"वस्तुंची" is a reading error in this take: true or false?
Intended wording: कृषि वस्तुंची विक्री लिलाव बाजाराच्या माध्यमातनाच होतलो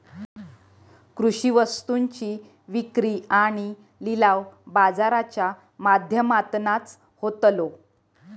false